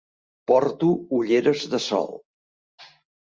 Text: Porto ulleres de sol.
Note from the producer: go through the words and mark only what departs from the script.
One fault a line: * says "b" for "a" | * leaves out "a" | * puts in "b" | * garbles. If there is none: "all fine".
all fine